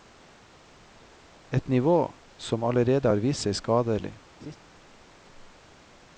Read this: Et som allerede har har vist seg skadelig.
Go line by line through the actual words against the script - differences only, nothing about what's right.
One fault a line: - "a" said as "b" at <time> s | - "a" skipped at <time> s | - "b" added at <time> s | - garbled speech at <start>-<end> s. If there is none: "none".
- "nivå" added at 1.7 s
- "har" skipped at 3.2 s